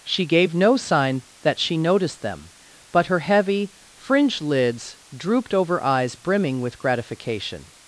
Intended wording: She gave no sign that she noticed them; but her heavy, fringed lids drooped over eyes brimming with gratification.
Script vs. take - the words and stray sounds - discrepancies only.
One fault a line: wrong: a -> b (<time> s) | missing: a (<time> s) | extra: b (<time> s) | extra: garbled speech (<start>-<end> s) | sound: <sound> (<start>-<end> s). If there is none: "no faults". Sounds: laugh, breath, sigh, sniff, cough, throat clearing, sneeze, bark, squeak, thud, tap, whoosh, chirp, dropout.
no faults